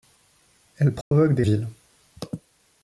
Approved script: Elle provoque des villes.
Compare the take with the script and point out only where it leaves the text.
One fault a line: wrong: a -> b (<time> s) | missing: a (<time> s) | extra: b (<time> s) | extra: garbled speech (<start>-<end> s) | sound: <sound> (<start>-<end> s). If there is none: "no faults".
sound: dropout (1.0-1.1 s)